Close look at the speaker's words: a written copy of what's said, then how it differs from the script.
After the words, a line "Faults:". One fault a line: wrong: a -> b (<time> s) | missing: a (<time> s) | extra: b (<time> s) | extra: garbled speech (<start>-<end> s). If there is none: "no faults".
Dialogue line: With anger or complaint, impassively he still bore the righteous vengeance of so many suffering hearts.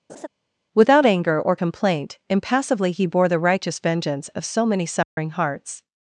Without anger or complaint, impassively he bore the righteous vengeance of so many suffering hearts.
Faults:
wrong: With -> Without (0.7 s)
missing: still (3.0 s)